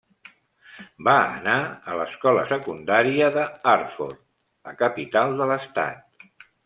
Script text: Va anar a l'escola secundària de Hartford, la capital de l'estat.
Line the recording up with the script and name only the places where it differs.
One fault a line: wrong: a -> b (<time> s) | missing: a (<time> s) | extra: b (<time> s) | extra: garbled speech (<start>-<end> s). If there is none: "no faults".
no faults